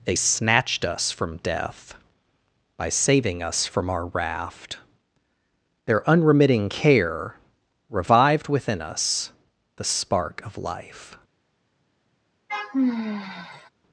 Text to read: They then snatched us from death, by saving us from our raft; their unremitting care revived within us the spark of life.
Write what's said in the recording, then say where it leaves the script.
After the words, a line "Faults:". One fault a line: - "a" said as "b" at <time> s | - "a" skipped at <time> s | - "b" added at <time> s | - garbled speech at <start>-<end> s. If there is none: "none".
They snatched us from death, by saving us from our raft; their unremitting care revived within us the spark of life.
Faults:
- "then" skipped at 0.1 s